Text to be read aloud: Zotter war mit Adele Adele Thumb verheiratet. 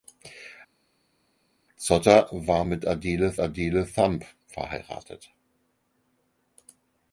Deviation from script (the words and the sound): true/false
false